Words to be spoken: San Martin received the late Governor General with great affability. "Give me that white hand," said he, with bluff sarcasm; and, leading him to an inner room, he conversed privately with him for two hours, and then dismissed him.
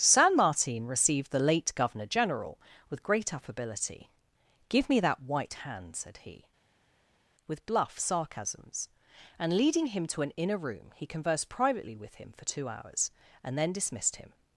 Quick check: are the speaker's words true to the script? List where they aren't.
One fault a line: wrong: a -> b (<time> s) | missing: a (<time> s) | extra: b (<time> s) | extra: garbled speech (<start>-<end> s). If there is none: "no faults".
wrong: sarcasm -> sarcasms (8.0 s)